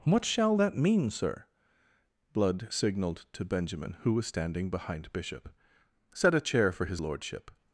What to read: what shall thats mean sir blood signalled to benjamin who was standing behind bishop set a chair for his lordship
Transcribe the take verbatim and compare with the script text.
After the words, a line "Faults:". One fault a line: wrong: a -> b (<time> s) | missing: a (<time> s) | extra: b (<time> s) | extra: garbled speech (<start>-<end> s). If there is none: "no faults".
what shall that mean sir blood signalled to benjamin who was standing behind bishop set a chair for his lordship
Faults:
wrong: thats -> that (0.5 s)